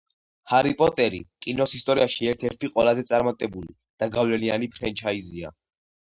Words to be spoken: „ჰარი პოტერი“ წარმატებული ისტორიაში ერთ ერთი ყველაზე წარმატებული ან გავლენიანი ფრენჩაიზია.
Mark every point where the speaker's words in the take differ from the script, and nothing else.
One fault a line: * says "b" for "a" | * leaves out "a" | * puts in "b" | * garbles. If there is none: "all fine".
* says "კინოს" for "წარმატებული"
* says "და" for "ან"